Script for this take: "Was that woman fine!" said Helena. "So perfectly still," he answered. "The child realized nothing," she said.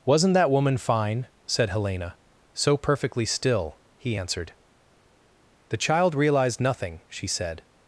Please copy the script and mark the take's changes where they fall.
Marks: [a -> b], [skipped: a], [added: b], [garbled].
["Was -> Wasn't] that woman fine!" said Helena. "So perfectly still," he answered. "The child realized nothing," she said.